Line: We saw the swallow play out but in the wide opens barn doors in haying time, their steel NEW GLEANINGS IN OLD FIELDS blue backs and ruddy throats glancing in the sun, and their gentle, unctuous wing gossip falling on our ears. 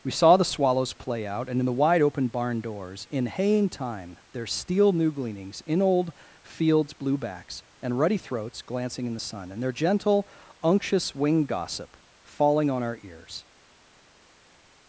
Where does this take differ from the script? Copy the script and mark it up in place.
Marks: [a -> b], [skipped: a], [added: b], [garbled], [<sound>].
We saw the [swallow -> swallows] play out [but -> and] in the wide [opens -> open] barn doors in haying time, their steel NEW GLEANINGS IN OLD FIELDS blue backs and ruddy throats glancing in the sun, and their gentle, unctuous wing gossip falling on our ears.